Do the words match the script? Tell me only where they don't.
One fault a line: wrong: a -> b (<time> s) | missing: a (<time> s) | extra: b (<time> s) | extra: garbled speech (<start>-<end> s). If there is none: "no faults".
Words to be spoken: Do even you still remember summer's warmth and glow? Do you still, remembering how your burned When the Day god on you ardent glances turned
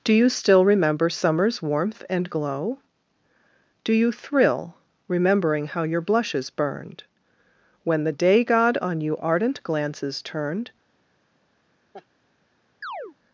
missing: even (0.1 s)
wrong: still -> thrill (4.1 s)
extra: blushes (6.0 s)